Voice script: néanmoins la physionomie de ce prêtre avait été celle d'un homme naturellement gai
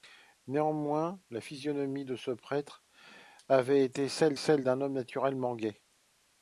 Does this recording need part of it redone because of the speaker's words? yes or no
yes